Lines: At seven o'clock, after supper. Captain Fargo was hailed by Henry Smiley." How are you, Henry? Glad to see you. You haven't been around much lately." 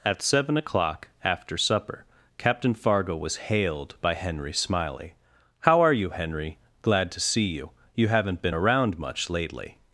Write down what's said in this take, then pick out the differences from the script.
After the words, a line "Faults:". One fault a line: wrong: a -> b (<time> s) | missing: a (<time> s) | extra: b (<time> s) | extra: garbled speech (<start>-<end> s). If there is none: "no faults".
At seven o'clock, after supper. Captain Fargo was hailed by Henry Smiley." How are you, Henry? Glad to see you. You haven't been around much lately."
Faults:
no faults